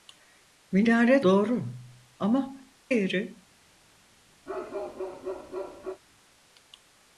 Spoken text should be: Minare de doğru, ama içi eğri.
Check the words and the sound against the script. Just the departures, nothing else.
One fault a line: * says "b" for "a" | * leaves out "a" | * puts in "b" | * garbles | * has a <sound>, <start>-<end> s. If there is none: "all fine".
* leaves out "de"
* leaves out "içi"
* has a bark, 4.5-6.0 s